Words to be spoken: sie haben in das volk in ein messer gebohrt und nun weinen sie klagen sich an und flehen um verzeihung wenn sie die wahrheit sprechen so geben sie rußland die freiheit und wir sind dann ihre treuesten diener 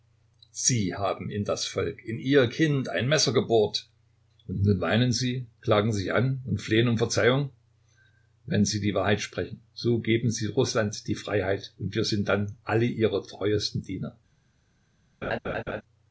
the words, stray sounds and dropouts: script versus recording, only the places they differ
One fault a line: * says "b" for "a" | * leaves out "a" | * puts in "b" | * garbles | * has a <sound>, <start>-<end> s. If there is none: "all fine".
* puts in "ihr kind"
* puts in "alle"
* has a laugh, 15.2-15.8 s